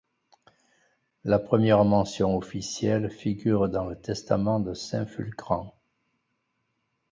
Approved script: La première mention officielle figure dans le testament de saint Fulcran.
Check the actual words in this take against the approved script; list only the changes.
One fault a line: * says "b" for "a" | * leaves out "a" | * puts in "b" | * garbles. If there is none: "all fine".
all fine